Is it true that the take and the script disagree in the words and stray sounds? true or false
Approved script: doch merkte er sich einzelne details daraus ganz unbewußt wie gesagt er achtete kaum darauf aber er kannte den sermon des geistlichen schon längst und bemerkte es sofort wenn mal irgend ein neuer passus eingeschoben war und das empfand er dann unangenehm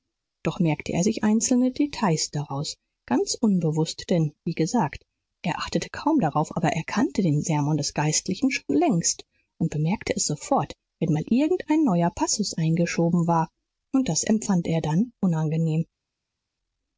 true